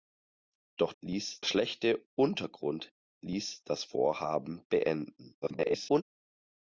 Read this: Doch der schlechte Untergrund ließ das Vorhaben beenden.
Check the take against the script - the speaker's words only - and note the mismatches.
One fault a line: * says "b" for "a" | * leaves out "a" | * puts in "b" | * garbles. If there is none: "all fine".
* says "ließ" for "der"
* garbles